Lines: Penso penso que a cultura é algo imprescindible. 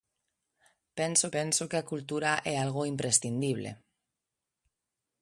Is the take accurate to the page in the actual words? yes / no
yes